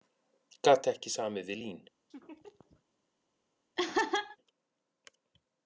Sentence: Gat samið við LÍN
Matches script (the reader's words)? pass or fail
fail